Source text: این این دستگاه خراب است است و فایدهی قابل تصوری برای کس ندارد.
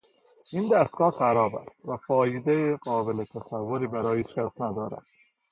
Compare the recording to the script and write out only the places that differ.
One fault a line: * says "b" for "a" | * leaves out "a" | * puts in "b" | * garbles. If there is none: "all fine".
* leaves out "این"
* leaves out "است"
* puts in "هیچ"